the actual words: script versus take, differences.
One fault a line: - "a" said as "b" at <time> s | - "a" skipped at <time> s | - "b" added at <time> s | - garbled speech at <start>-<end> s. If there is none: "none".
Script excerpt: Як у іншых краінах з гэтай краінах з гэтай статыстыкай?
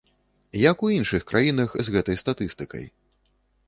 - "краінах з гэтай" skipped at 2.2 s